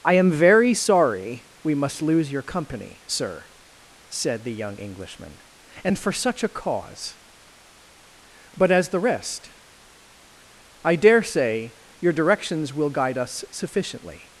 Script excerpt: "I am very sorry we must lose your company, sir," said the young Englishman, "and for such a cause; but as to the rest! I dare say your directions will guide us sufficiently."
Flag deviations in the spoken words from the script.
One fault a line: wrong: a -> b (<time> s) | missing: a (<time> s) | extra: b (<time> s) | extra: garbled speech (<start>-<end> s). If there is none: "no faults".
missing: to (8.9 s)